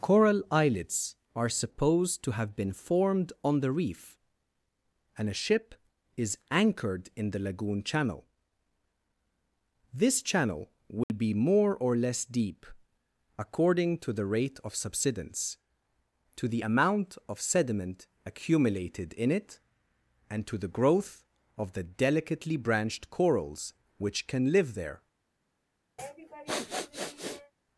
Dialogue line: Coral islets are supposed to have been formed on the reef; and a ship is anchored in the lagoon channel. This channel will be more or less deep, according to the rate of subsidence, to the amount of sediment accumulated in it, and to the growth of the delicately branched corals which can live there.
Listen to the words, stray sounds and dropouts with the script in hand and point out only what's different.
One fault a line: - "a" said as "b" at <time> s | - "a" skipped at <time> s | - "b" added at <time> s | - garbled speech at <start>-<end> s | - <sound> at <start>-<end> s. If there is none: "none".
- dropout at 11.0-11.1 s
- sniff at 26.0-27.5 s